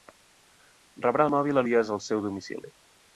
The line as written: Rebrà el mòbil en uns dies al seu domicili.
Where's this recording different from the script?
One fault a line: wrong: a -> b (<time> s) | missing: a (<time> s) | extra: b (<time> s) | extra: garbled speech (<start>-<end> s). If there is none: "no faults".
missing: en uns (1.6 s)